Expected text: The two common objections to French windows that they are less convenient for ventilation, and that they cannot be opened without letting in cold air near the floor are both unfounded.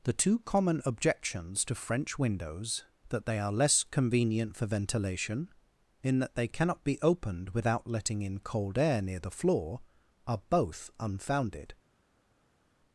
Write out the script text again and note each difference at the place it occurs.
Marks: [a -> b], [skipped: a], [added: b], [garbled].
The two common objections to French windows that they are less convenient for ventilation, [and -> in] that they cannot be opened without letting in cold air near the floor are both unfounded.